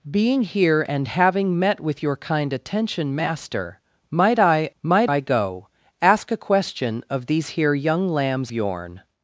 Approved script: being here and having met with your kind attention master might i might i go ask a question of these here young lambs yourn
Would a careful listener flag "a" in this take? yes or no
no